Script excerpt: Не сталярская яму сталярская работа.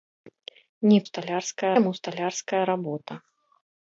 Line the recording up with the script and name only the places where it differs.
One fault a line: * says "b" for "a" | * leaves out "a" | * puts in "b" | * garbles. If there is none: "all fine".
all fine